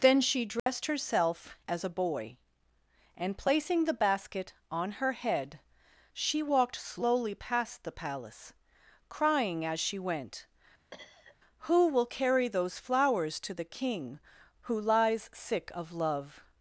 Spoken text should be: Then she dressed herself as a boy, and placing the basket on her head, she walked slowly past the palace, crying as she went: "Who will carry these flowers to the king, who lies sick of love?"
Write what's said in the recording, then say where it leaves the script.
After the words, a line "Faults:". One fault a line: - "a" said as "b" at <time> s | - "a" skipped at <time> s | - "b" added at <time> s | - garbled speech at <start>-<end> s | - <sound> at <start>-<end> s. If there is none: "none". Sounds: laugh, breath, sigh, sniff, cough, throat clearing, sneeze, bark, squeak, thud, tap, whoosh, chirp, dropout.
Then she dressed herself as a boy, and placing the basket on her head, she walked slowly past the palace, crying as she went: "Who will carry those flowers to the king, who lies sick of love?"
Faults:
- dropout at 0.6-0.7 s
- cough at 10.9-11.4 s
- "these" said as "those" at 12.5 s